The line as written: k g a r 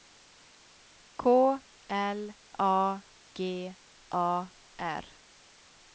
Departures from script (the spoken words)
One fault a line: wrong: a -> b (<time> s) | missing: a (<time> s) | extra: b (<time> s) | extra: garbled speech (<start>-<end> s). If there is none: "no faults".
extra: l a (1.9 s)